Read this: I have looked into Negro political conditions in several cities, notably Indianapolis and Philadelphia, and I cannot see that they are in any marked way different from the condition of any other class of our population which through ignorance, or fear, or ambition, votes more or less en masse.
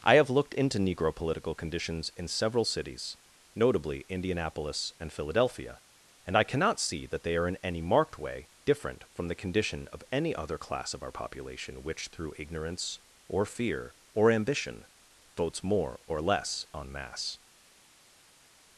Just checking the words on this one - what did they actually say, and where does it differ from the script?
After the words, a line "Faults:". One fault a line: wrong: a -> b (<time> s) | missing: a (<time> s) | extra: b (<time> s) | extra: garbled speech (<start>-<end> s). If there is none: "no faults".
I have looked into Negro political conditions in several cities, notably Indianapolis and Philadelphia, and I cannot see that they are in any marked way different from the condition of any other class of our population which through ignorance, or fear, or ambition, votes more or less en masse.
Faults:
no faults